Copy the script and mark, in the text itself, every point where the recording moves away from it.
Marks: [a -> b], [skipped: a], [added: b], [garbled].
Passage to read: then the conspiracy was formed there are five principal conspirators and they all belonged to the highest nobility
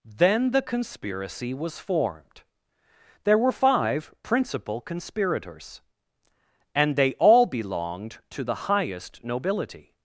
then the conspiracy was formed there [are -> were] five principal conspirators and they all belonged to the highest nobility